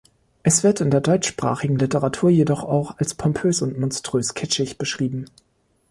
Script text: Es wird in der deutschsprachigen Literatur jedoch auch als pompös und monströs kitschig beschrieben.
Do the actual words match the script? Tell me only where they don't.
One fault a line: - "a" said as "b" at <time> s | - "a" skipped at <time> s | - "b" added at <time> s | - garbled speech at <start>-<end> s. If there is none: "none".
none